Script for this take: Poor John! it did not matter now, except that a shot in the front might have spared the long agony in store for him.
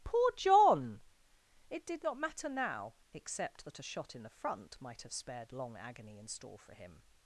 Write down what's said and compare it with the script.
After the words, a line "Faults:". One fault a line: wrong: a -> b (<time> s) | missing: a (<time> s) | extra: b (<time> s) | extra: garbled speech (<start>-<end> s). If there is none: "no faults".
Poor John! it did not matter now, except that a shot in the front might have spared long agony in store for him.
Faults:
missing: the (5.5 s)